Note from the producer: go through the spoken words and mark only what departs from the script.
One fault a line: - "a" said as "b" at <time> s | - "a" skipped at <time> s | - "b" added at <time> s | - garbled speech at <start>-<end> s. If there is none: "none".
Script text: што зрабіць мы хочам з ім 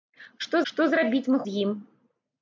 - "што" added at 0.7 s
- "хочам" skipped at 1.4 s